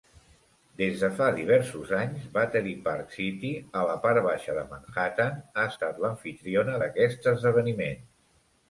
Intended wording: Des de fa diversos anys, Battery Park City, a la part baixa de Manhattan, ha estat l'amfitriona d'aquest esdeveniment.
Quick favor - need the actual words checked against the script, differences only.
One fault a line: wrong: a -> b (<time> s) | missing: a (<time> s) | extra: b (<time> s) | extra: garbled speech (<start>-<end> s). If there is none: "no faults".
no faults